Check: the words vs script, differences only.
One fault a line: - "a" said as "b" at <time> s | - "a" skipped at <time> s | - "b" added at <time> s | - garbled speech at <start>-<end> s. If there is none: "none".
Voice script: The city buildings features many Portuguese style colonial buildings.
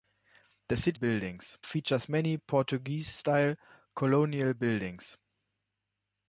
none